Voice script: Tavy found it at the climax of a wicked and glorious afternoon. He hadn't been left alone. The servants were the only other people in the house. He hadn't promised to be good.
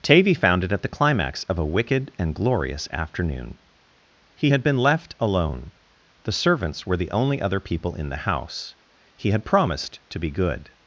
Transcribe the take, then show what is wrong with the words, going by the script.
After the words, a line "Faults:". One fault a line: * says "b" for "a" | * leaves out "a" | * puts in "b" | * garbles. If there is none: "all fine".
Tavy found it at the climax of a wicked and glorious afternoon. He had been left alone. The servants were the only other people in the house. He had promised to be good.
Faults:
* says "had" for "hadn't"
* says "had" for "hadn't"